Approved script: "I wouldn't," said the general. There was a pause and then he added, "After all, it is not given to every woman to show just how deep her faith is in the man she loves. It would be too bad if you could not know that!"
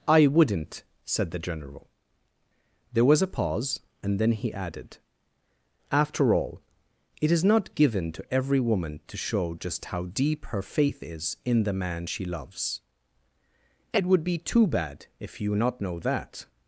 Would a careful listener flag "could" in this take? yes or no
yes